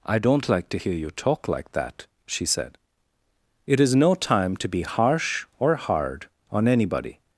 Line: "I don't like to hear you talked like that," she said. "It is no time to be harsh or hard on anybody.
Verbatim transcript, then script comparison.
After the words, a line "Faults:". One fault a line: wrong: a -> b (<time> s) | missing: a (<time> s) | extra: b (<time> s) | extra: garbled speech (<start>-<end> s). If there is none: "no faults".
"I don't like to hear you talk like that," she said. "It is no time to be harsh or hard on anybody.
Faults:
wrong: talked -> talk (1.1 s)